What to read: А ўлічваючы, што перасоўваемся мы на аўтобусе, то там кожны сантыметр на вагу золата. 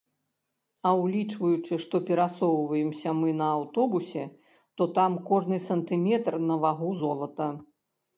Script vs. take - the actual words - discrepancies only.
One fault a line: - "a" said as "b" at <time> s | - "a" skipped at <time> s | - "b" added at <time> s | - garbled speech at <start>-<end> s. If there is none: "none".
none